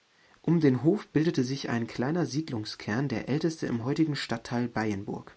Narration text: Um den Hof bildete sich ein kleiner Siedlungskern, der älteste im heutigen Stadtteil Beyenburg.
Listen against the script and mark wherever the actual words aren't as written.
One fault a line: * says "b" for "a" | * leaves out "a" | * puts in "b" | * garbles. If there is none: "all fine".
all fine